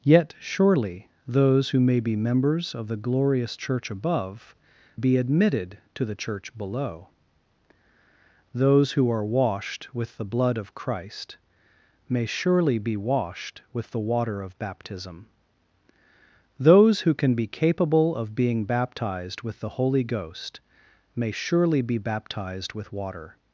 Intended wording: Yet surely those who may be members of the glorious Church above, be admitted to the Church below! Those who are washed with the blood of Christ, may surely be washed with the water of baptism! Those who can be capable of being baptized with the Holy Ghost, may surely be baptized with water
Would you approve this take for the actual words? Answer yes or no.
yes